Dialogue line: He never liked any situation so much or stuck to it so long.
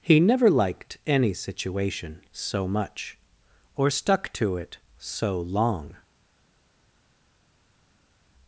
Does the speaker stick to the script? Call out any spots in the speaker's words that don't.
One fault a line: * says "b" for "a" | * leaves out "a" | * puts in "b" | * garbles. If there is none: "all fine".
all fine